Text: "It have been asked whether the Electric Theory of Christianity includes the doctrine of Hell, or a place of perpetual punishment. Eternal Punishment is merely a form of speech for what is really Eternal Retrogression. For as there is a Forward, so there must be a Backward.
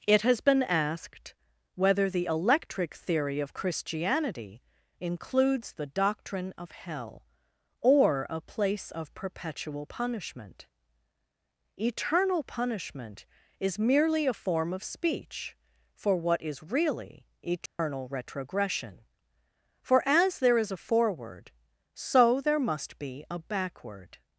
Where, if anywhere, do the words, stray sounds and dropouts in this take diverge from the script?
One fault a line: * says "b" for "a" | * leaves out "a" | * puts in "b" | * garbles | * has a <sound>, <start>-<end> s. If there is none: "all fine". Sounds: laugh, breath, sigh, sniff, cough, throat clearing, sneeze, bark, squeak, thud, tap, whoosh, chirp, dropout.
* says "has" for "have"
* has a dropout, 17.7-17.8 s